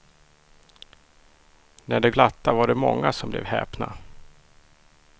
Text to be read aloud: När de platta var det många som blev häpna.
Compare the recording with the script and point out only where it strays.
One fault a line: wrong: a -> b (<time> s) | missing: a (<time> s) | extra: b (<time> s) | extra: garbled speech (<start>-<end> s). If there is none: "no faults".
no faults